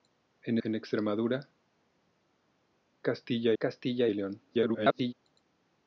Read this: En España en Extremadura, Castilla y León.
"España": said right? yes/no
no